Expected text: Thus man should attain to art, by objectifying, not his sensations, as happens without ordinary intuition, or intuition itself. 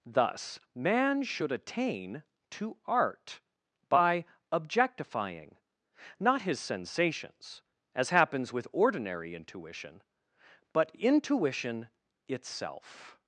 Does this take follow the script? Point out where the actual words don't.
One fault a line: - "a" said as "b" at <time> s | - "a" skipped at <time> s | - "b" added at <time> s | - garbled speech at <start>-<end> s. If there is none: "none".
- "without" said as "with" at 8.5 s
- "or" said as "but" at 10.7 s